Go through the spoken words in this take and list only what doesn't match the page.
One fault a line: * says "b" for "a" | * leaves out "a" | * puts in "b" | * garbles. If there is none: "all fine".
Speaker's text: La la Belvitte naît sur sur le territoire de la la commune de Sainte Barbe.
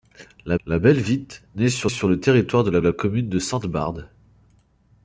all fine